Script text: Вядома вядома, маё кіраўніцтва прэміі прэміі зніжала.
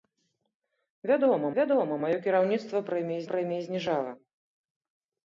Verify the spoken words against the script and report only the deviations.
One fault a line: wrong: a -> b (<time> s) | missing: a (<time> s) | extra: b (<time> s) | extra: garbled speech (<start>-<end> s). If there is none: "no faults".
no faults